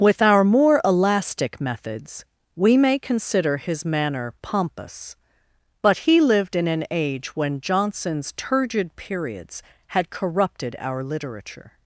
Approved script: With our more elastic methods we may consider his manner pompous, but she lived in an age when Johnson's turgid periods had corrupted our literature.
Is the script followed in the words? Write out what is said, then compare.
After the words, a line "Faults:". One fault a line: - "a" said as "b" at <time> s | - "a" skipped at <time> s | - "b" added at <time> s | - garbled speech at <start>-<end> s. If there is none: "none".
With our more elastic methods we may consider his manner pompous, but he lived in an age when Johnson's turgid periods had corrupted our literature.
Faults:
- "she" said as "he" at 6.1 s